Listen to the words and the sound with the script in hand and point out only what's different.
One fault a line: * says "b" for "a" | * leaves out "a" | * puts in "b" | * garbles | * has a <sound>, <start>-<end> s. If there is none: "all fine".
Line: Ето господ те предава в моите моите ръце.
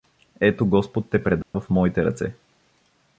* has a dropout, 1.4-1.5 s
* leaves out "моите"